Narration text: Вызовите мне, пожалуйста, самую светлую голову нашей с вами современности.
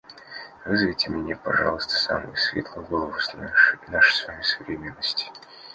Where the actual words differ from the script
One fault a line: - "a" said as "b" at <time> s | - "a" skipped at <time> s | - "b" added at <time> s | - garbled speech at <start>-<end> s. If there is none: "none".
none